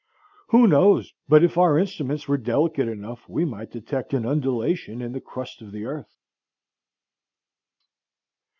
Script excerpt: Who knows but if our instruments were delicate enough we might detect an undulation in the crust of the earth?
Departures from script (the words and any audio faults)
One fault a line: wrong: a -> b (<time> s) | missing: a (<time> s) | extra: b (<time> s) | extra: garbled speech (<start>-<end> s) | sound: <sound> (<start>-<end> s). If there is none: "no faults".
no faults